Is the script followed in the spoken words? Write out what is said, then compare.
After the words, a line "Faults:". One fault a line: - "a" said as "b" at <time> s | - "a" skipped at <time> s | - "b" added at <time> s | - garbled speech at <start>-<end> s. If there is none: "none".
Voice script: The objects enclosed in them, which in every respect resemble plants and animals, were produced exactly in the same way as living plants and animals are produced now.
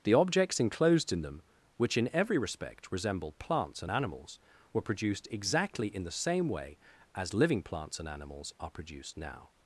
The objects enclosed in them, which in every respect resemble plants and animals, were produced exactly in the same way as living plants and animals are produced now.
Faults:
none